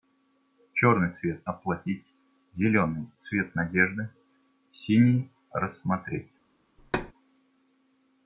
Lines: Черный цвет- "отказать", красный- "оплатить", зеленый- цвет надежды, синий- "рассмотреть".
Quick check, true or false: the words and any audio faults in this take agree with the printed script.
false